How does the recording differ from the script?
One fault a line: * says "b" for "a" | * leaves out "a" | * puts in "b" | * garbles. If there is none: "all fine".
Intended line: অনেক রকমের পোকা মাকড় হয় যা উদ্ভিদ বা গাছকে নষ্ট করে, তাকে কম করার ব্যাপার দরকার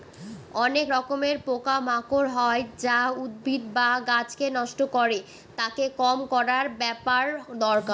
all fine